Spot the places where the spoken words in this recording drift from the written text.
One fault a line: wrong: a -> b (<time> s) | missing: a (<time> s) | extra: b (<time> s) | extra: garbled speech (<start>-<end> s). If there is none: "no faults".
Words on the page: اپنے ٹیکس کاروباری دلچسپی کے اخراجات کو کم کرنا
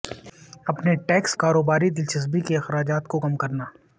no faults